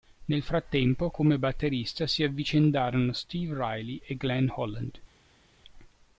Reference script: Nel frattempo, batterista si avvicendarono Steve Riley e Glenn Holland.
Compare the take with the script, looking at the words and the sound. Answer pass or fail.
fail